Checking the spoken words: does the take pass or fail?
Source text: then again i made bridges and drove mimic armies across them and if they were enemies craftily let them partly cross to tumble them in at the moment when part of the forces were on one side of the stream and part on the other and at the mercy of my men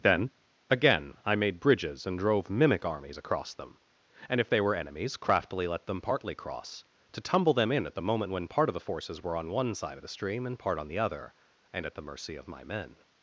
pass